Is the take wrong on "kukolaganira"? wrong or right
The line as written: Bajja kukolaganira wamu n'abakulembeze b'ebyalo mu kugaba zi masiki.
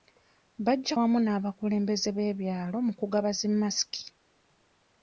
wrong